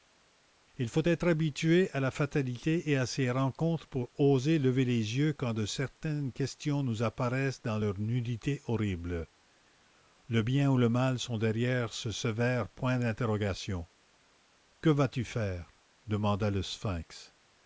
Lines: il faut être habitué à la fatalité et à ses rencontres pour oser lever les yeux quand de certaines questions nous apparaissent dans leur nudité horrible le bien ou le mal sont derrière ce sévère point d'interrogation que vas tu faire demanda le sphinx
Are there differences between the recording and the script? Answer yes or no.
no